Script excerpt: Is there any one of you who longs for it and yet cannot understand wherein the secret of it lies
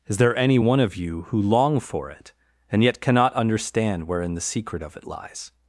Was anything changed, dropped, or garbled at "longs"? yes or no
yes